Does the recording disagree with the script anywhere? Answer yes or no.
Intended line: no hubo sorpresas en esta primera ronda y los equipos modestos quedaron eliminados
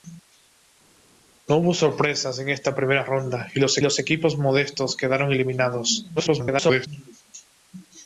yes